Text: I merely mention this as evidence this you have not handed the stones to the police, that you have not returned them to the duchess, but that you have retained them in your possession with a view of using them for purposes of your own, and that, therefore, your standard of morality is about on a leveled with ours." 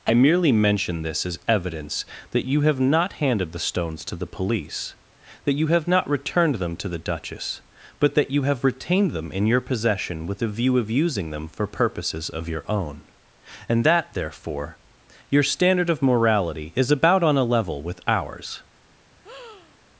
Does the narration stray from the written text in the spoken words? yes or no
yes